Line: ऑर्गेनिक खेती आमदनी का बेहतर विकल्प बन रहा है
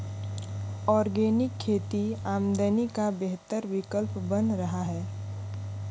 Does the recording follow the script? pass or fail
pass